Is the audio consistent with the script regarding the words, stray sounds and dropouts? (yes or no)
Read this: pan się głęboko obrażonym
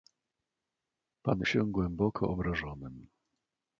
yes